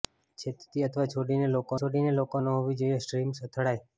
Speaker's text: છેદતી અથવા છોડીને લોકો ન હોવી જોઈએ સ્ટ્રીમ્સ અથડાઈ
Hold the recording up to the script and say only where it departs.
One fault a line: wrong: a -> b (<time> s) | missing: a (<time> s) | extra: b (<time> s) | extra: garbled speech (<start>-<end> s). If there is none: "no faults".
extra: છોડીને લોકો (1.8 s)